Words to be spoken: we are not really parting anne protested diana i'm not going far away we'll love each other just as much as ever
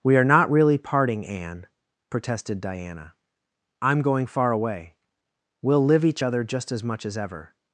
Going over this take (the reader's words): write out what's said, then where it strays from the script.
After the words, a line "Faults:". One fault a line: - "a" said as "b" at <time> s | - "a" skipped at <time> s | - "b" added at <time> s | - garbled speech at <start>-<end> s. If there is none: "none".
we are not really parting anne protested diana i'm going far away we'll live each other just as much as ever
Faults:
- "not" skipped at 4.0 s
- "love" said as "live" at 5.8 s